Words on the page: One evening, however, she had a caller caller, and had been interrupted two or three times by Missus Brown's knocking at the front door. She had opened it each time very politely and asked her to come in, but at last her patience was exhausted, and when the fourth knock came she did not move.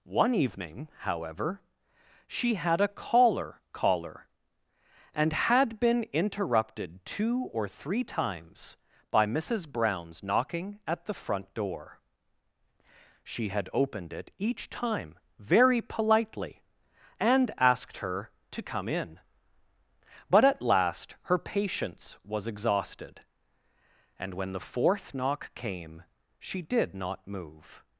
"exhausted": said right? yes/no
yes